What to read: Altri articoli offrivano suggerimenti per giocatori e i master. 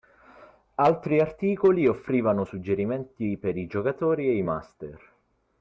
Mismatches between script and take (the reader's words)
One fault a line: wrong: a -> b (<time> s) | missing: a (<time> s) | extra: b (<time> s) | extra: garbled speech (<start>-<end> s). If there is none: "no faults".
extra: i (3.6 s)